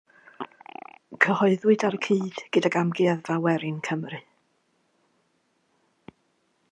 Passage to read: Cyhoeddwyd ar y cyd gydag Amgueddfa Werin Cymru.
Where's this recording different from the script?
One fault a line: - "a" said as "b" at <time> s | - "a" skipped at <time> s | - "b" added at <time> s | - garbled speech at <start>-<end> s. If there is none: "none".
none